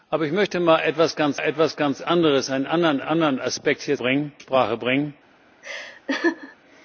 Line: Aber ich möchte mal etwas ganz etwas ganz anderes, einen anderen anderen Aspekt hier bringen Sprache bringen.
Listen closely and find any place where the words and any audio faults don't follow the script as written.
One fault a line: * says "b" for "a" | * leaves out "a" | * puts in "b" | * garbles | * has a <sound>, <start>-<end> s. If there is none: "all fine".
* has a laugh, 5.6-6.6 s